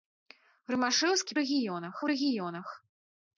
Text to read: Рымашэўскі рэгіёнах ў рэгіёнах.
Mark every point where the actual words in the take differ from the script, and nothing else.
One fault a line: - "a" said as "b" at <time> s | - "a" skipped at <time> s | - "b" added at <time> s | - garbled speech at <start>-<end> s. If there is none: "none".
none